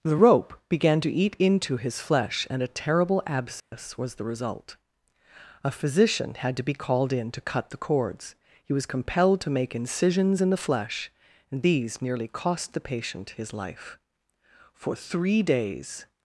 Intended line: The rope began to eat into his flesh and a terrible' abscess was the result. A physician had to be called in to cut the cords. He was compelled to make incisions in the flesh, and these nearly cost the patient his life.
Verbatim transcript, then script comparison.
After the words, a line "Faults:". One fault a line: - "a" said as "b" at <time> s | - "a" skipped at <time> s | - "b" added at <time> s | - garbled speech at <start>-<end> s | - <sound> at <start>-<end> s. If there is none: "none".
The rope began to eat into his flesh and a terrible' abscess was the result. A physician had to be called in to cut the cords. He was compelled to make incisions in the flesh, and these nearly cost the patient his life. For three days
Faults:
- dropout at 3.6-3.7 s
- "For three days" added at 14.7 s